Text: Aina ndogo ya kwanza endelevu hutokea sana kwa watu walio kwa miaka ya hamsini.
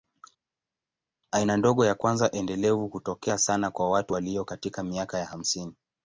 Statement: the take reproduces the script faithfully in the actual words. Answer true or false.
false